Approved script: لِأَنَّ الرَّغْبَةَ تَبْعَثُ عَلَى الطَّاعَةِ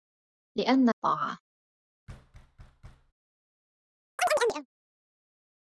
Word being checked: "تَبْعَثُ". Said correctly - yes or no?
no